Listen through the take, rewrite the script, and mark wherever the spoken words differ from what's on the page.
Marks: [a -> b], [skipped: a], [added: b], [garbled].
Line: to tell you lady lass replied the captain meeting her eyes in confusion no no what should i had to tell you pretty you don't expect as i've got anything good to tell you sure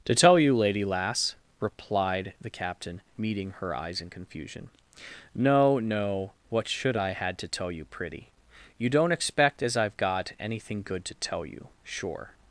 to tell you lady lass replied the captain meeting her eyes in confusion no no what should i had to tell you pretty you don't expect as i've got anything good to tell you sure